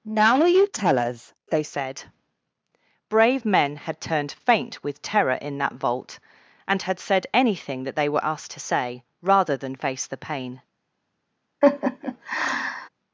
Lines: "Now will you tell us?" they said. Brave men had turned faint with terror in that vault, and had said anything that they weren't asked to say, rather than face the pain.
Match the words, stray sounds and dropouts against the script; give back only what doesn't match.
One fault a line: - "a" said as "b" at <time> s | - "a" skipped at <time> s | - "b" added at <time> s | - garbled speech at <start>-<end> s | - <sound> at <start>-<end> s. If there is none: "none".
- "weren't" said as "were" at 8.1 s
- laugh at 11.6-12.9 s